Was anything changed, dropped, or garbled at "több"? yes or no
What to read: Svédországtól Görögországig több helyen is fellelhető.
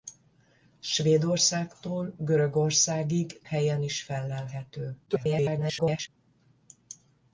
yes